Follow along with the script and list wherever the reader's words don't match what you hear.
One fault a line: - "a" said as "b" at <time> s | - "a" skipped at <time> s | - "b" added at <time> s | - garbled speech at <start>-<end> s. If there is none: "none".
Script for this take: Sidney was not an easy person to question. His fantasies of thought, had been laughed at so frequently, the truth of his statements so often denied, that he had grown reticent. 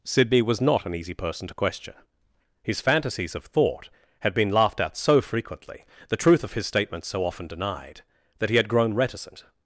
none